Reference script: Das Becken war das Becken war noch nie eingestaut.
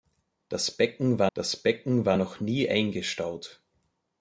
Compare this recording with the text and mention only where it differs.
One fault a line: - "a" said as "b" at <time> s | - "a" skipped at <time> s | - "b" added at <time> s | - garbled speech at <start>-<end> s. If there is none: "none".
none